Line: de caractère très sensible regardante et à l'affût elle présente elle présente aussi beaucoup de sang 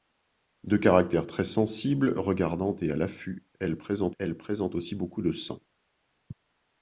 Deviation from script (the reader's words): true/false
false